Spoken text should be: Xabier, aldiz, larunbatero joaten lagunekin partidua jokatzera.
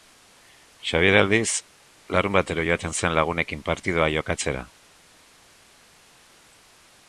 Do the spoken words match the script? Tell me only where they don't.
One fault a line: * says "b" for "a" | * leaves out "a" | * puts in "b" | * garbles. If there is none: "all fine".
* puts in "zen"